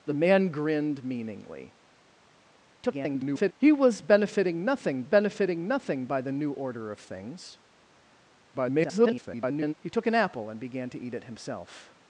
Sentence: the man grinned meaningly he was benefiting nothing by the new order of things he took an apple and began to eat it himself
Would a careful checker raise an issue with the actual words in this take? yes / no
yes